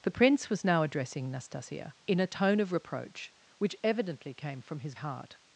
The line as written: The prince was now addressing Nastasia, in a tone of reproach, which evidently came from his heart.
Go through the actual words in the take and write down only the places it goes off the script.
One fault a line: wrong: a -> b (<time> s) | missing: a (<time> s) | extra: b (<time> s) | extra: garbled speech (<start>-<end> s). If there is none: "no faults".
no faults